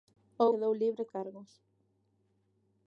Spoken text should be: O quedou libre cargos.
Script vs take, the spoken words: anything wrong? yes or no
no